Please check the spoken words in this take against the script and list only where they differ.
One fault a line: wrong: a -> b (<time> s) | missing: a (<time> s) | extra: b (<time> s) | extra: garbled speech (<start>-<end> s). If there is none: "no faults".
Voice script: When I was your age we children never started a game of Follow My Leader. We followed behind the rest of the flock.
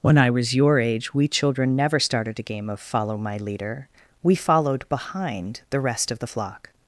no faults